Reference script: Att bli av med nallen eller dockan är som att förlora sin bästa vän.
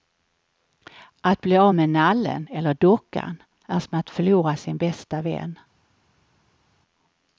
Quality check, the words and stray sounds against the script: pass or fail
pass